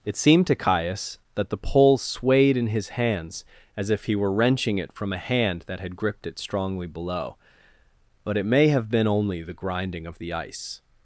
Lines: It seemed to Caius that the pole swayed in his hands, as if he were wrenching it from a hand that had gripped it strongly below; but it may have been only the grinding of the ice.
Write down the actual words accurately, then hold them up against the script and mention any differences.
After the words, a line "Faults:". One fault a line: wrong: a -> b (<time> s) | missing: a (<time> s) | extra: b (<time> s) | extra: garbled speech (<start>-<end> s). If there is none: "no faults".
It seemed to Caius that the pole swayed in his hands, as if he were wrenching it from a hand that had gripped it strongly below; but it may have been only the grinding of the ice.
Faults:
no faults